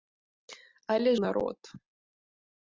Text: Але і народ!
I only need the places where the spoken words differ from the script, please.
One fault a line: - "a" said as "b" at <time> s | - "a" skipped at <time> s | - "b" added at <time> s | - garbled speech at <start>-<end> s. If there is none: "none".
none